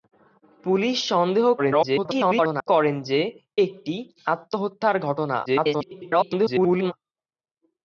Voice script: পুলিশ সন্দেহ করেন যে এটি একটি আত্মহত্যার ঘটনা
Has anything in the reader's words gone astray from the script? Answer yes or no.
yes